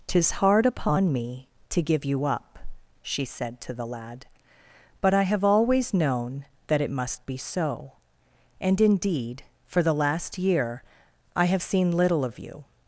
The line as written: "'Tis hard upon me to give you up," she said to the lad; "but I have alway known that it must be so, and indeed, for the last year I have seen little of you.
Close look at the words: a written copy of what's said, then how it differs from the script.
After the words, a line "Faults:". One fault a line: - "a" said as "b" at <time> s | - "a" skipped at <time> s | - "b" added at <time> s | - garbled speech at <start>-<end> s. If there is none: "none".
"'Tis hard upon me to give you up," she said to the lad; "but I have always known that it must be so, and indeed, for the last year I have seen little of you.
Faults:
- "alway" said as "always" at 5.4 s